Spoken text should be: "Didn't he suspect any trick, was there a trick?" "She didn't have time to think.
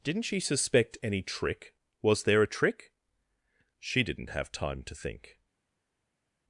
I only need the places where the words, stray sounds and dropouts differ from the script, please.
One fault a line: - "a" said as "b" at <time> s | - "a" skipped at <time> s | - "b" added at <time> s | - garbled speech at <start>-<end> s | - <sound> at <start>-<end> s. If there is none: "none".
- "he" said as "she" at 0.2 s